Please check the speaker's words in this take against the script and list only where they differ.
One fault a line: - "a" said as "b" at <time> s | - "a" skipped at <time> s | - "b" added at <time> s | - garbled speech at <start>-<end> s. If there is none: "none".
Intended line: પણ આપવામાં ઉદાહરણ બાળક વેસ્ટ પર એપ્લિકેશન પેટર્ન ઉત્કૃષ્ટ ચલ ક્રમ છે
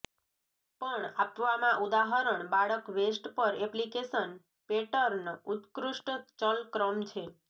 none